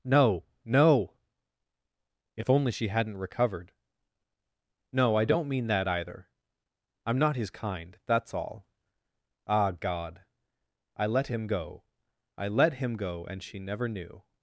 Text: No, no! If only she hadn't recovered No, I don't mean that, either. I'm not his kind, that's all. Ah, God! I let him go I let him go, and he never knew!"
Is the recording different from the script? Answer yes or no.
yes